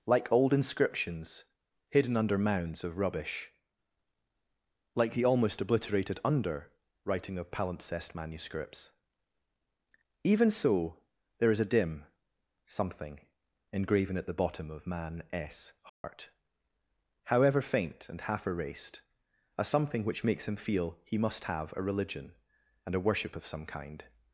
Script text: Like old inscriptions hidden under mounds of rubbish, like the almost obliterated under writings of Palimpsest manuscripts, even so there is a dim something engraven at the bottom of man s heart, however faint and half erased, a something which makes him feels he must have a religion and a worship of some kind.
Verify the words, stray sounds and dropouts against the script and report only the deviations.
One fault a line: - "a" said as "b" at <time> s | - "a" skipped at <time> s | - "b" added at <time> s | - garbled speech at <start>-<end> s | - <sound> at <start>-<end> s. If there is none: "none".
- "writings" said as "writing" at 7.0 s
- dropout at 15.9-16.0 s
- "feels" said as "feel" at 20.6 s